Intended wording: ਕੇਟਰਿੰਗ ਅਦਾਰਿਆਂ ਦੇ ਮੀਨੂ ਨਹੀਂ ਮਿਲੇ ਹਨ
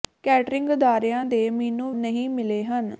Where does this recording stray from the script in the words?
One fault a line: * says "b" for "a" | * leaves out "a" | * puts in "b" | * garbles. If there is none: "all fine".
all fine